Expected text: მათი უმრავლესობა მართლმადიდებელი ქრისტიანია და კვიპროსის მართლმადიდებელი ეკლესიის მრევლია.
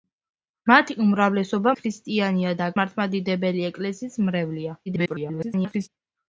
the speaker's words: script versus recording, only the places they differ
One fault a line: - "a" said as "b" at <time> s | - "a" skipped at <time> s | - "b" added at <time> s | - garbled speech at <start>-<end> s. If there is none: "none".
- "მართლმადიდებელი" skipped at 1.7 s
- "კვიპროსის" skipped at 2.7 s
- garbled speech at 4.9-5.9 s